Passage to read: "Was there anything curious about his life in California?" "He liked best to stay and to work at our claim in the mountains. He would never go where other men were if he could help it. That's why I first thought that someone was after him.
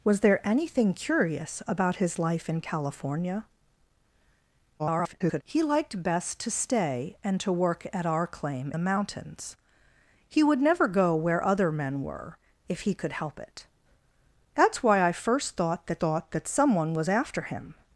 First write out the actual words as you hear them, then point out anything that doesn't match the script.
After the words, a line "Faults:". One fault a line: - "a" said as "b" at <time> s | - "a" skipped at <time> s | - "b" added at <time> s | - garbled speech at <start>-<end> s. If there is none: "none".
"Was there anything curious about his life in California?" [garbled] "He liked best to stay and to work at our claim the mountains. He would never go where other men were if he could help it. That's why I first thought that thought that someone was after him.
Faults:
- garbled speech at 4.8-5.4 s
- "in" skipped at 8.7 s
- "thought that" added at 16.0 s